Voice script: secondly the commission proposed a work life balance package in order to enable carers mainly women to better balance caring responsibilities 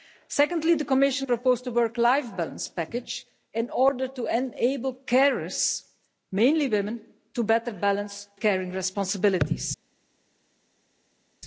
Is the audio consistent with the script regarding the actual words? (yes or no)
yes